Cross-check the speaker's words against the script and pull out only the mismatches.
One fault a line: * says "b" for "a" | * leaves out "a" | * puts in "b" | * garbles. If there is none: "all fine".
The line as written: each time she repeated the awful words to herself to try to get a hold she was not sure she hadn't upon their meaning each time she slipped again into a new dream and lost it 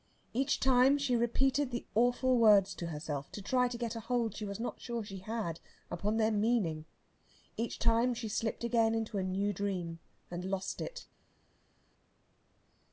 * says "had" for "hadn't"